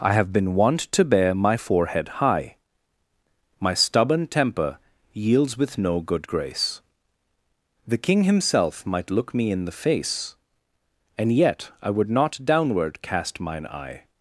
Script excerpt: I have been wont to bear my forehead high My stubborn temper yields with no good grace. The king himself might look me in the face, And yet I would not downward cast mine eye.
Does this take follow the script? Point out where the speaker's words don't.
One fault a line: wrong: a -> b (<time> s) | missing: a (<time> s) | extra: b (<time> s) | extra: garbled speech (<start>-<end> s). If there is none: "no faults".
no faults